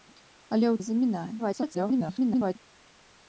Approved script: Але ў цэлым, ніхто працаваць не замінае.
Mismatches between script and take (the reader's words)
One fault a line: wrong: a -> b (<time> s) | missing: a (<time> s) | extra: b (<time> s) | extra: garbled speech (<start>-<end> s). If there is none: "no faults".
missing: цэлым ніхто працаваць (0.8 s)
extra: garbled speech (1.4-2.6 s)